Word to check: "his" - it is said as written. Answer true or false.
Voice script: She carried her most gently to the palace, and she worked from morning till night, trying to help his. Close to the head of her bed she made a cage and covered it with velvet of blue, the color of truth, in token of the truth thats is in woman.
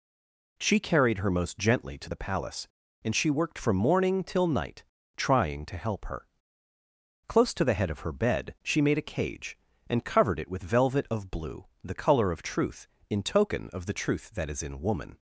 false